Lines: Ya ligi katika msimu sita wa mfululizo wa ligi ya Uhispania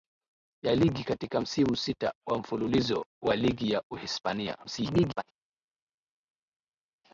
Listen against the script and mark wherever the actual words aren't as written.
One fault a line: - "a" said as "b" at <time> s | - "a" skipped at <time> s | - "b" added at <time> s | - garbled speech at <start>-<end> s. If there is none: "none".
- garbled speech at 4.6-5.2 s